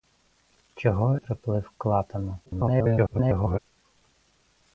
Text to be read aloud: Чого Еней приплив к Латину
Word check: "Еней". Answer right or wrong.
wrong